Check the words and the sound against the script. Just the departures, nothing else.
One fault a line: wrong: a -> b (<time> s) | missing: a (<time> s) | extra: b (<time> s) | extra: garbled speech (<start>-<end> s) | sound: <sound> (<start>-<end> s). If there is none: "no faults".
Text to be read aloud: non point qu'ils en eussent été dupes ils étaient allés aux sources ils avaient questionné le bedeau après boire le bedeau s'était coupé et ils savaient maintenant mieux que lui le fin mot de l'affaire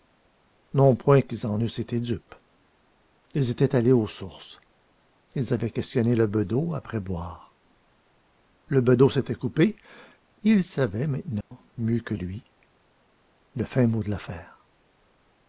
sound: dropout (11.4-11.5 s)